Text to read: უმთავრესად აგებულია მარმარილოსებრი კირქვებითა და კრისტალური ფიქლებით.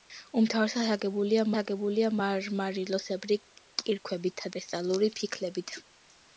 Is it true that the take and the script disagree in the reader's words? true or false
true